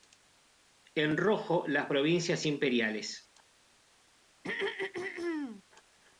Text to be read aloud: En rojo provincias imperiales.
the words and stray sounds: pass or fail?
fail